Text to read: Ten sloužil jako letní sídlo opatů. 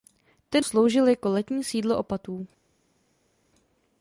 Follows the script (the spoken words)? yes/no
yes